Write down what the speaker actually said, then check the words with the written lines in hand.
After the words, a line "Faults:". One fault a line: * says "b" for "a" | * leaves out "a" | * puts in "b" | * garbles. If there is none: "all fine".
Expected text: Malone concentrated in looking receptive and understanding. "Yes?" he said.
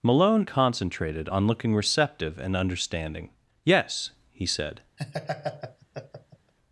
Malone concentrated on looking receptive and understanding. "Yes?" he said.
Faults:
* says "on" for "in"